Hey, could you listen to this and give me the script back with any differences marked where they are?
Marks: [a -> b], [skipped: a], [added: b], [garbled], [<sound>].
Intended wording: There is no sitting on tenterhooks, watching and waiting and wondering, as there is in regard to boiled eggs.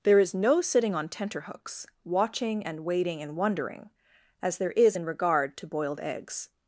There is no sitting on tenterhooks, watching and waiting and wondering, as there is in regard to boiled eggs.